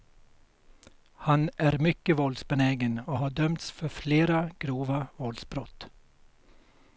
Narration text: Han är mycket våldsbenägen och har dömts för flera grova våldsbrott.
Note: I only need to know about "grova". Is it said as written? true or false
true